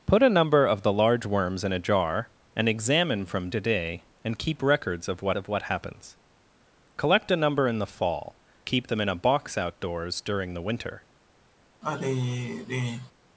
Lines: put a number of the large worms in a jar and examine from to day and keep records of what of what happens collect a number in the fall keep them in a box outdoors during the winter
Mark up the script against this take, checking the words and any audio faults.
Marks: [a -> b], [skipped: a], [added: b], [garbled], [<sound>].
put a number of the large worms in a jar and examine from to day and keep records of what of what happens collect a number in the fall keep them in a box outdoors during the winter [sigh]